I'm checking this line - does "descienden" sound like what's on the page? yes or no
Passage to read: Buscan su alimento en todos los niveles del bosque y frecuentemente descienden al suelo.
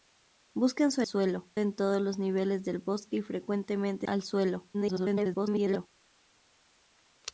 no